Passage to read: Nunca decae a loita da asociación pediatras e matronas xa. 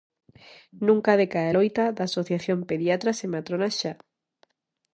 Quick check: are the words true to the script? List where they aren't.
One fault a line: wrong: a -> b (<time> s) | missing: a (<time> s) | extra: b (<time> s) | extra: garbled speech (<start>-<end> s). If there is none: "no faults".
no faults